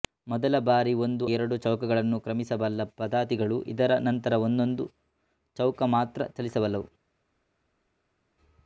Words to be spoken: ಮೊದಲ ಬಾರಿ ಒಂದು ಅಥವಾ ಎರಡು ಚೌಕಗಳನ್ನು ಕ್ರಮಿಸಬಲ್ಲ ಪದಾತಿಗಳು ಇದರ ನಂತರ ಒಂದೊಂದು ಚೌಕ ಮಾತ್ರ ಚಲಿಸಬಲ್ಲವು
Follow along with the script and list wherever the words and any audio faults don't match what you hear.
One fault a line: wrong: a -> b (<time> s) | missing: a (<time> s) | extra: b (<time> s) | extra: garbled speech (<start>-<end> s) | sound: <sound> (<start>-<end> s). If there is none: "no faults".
missing: ಅಥವಾ (1.2 s)